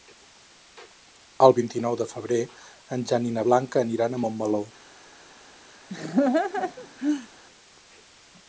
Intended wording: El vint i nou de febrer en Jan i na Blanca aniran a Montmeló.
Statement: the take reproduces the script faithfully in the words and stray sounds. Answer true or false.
false